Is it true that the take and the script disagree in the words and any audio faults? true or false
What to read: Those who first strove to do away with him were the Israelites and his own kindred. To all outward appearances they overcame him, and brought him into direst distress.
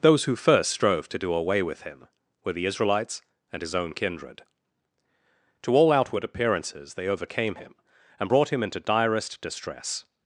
false